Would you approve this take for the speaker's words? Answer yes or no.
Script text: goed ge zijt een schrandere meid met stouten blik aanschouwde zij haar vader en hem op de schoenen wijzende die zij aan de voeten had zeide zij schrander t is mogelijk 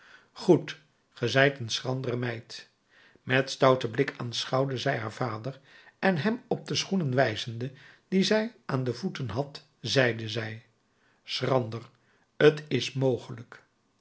yes